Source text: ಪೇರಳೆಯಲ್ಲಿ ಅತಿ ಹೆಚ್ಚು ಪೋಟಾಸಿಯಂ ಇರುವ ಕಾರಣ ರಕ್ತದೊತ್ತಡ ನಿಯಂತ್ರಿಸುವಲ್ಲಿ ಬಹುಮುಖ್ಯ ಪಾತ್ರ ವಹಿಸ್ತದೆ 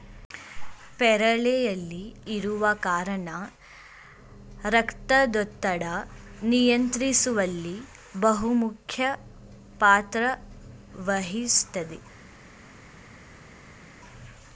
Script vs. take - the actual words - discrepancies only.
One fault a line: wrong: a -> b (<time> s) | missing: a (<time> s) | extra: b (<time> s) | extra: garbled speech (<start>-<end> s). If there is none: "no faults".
missing: ಅತಿ ಹೆಚ್ಚು ಪೋಟಾಸಿಯಂ (2.0 s)